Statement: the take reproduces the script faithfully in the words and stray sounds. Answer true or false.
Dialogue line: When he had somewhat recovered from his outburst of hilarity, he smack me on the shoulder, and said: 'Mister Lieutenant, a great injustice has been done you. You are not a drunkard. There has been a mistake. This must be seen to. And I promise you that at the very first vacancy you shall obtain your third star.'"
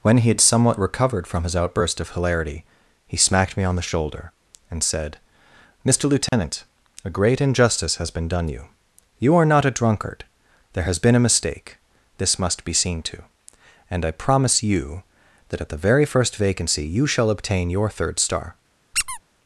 false